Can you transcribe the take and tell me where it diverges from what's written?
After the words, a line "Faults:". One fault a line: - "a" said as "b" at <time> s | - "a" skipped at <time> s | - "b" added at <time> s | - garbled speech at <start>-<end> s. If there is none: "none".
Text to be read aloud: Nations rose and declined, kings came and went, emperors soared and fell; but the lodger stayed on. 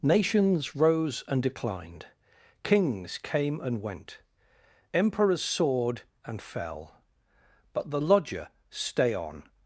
Nations rose and declined, kings came and went, emperors soared and fell; but the lodger stay on.
Faults:
- "stayed" said as "stay" at 8.7 s